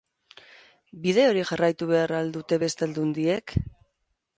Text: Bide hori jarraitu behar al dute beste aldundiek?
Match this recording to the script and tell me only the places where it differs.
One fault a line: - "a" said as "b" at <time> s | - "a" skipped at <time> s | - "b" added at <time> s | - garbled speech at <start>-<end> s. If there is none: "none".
none